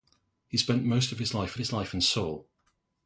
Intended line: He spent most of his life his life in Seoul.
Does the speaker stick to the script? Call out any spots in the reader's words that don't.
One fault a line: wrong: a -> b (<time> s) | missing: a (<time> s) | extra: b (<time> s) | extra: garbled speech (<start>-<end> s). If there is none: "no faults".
no faults